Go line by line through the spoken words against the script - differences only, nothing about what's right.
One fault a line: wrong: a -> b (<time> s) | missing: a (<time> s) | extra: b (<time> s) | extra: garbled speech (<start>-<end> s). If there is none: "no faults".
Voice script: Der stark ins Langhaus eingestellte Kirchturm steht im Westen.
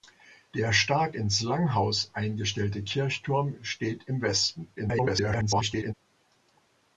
extra: garbled speech (4.8-5.9 s)